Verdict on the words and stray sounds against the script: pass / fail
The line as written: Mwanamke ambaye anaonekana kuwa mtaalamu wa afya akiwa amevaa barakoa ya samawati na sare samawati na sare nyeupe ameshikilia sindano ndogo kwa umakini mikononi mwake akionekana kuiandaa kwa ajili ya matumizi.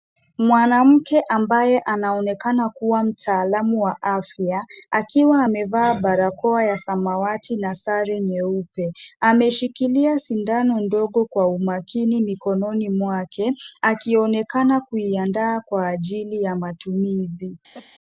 fail